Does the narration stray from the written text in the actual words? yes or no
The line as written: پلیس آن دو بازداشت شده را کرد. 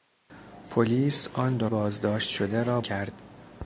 no